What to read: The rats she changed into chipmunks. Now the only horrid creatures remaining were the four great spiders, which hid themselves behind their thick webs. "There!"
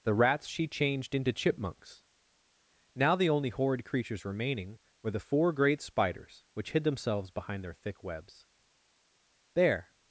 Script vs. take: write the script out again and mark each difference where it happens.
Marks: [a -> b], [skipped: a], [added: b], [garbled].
The rats she changed into chipmunks. Now the only horrid creatures remaining were the four great spiders, which hid themselves behind their thick webs. "There!"